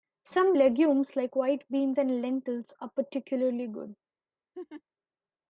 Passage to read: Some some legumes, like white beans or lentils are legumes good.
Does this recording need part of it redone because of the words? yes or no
yes